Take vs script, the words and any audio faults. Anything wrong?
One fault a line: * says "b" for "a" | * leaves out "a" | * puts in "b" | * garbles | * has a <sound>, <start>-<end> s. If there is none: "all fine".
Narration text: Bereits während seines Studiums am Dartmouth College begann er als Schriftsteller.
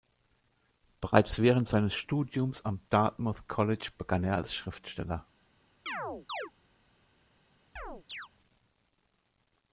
* has a chirp, 5.9-6.5 s
* has a chirp, 7.8-8.3 s